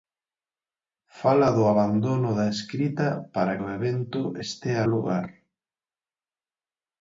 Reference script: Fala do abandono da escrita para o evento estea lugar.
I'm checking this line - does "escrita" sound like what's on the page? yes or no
yes